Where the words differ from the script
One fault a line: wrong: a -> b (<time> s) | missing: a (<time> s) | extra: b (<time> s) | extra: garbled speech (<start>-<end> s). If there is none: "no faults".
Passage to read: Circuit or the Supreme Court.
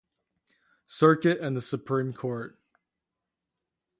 wrong: or -> and (1.4 s)